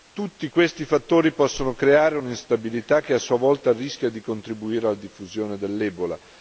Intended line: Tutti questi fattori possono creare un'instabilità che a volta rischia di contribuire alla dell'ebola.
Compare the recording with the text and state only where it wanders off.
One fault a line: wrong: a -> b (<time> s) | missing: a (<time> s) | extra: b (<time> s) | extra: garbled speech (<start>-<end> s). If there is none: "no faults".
extra: sua (3.2 s)
extra: diffusione (5.0 s)